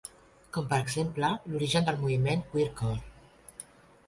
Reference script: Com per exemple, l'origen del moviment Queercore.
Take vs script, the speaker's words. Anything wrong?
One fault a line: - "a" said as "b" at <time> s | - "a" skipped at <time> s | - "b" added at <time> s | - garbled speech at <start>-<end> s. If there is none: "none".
none